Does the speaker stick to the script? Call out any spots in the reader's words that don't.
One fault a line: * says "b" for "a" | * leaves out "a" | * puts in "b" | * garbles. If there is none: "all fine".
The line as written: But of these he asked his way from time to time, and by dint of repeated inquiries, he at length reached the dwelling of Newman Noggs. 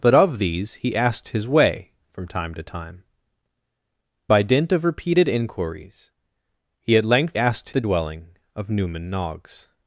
* leaves out "and"
* says "asked" for "reached"